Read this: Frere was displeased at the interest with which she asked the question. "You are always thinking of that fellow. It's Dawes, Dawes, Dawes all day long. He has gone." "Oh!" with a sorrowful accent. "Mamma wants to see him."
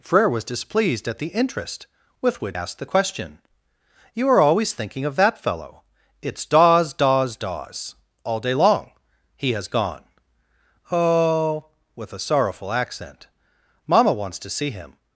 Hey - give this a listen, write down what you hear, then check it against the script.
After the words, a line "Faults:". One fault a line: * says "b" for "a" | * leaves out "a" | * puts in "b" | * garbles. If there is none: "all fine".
Frere was displeased at the interest with which asked the question. "You are always thinking of that fellow. It's Dawes, Dawes, Dawes all day long. He has gone." "Oh!" with a sorrowful accent. "Mamma wants to see him."
Faults:
* leaves out "she"